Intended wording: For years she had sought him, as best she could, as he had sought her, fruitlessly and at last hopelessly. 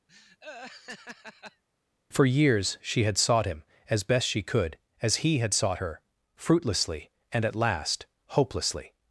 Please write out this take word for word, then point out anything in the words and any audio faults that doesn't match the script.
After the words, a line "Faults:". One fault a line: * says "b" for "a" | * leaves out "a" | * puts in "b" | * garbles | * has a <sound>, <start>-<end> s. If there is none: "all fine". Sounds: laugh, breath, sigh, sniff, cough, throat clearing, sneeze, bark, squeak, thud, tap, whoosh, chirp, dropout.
For years she had sought him, as best she could, as he had sought her, fruitlessly and at last hopelessly.
Faults:
* has a laugh, 0.1-1.6 s